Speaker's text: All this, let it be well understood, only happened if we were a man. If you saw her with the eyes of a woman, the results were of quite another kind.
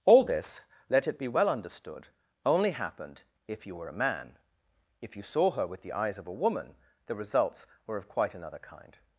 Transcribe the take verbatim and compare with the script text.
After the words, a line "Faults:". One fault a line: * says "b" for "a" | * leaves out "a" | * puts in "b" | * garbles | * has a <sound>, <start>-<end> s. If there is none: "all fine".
All this, let it be well understood, only happened if you were a man. If you saw her with the eyes of a woman, the results were of quite another kind.
Faults:
* says "you" for "we"